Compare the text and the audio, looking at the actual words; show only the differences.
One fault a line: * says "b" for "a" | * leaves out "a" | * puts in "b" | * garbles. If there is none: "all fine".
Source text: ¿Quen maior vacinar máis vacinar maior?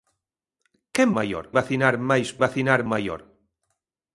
all fine